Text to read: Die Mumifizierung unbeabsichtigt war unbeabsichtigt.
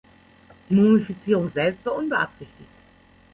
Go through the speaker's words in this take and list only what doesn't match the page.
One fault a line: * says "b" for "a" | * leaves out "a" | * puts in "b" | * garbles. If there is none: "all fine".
* says "selbst" for "unbeabsichtigt"